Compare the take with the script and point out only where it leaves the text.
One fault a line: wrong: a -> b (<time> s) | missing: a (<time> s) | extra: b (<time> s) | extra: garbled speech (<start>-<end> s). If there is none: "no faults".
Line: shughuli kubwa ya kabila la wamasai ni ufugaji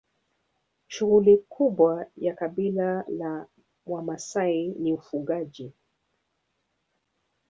no faults